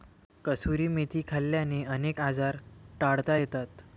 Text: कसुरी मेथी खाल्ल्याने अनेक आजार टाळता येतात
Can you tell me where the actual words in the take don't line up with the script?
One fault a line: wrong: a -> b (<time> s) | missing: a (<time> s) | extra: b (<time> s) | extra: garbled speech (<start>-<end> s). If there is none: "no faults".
no faults